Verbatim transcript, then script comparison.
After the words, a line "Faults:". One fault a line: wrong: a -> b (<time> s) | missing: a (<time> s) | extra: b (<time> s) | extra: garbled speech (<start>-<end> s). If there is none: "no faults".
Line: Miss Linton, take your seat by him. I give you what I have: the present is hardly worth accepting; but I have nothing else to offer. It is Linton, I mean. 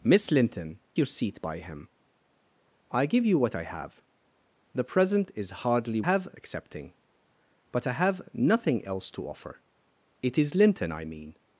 Miss Linton, your seat by him. I give you what I have: the present is hardly have accepting; but I have nothing else to offer. It is Linton, I mean.
Faults:
missing: take (0.8 s)
wrong: worth -> have (6.0 s)